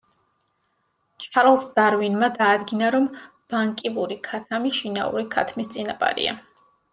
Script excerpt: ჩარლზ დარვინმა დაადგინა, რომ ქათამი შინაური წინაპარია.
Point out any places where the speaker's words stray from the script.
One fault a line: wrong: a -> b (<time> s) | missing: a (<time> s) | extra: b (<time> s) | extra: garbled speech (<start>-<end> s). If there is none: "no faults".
extra: ბანკივური (3.5 s)
extra: ქათმის (5.4 s)